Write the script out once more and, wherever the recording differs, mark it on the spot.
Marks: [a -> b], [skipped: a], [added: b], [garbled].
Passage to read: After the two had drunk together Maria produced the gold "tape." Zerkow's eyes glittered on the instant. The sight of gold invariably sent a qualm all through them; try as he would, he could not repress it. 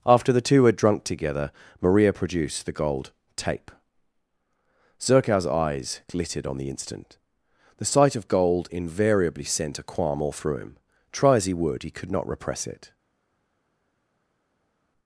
After the two had drunk together Maria produced the gold "tape." Zerkow's eyes glittered on the instant. The sight of gold invariably sent a qualm all through [them; -> him] try as he would, he could not repress it.